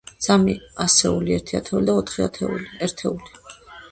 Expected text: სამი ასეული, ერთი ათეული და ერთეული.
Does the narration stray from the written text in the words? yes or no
yes